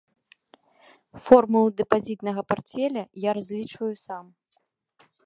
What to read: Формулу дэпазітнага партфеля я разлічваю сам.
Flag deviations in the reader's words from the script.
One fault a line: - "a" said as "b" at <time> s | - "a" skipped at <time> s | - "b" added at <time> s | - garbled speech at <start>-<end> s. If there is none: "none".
none